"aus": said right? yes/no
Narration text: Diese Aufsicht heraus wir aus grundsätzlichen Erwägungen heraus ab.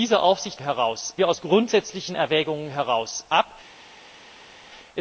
yes